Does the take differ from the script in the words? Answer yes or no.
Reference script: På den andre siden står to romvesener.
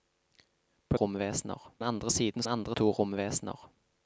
yes